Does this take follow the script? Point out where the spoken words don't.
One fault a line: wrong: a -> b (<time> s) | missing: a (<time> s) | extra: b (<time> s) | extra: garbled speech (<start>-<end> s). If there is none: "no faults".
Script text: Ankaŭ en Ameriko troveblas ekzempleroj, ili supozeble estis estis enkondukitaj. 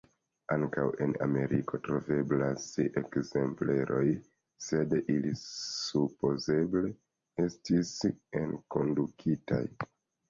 extra: sed (4.6 s)
missing: estis (7.9 s)